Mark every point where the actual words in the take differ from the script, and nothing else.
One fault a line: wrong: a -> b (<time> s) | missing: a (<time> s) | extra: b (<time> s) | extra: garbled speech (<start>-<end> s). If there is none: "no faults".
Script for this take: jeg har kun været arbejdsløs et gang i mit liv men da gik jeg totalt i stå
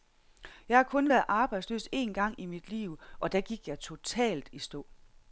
wrong: et -> en (1.9 s)
wrong: men -> og (3.2 s)